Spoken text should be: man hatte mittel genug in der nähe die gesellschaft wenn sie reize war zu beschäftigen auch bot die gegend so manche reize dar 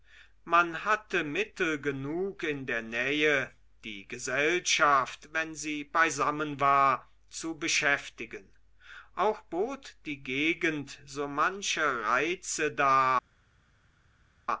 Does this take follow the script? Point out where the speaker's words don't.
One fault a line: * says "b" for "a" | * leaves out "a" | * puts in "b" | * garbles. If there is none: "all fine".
* says "beisammen" for "reize"